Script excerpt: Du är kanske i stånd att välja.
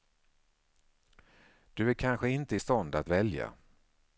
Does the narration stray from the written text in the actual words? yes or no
yes